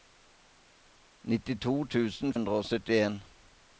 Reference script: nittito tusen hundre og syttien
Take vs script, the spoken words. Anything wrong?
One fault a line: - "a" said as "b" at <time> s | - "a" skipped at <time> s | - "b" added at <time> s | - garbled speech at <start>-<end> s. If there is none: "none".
none